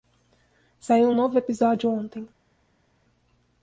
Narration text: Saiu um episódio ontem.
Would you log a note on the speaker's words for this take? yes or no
yes